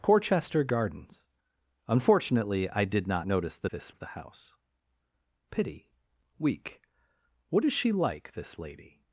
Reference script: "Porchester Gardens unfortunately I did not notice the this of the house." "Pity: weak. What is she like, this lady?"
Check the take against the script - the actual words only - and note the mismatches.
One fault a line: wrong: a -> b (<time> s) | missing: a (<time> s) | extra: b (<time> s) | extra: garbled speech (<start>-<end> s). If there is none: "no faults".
no faults